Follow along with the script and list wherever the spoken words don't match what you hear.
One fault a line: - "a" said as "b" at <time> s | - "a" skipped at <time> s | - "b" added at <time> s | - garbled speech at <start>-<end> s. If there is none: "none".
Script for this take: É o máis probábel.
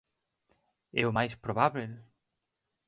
none